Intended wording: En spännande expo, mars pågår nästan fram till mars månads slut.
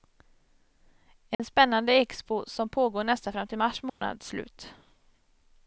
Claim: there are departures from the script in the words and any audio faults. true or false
true